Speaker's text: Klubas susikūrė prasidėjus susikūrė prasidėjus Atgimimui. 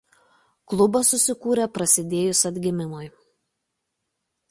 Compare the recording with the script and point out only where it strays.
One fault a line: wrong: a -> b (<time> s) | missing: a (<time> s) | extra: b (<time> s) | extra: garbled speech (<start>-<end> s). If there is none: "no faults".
missing: susikūrė prasidėjus (2.4 s)